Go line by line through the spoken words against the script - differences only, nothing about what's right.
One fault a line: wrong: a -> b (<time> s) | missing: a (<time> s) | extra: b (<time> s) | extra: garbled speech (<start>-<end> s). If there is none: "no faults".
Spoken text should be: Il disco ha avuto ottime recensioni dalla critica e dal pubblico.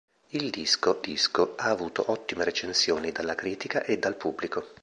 extra: disco (1.0 s)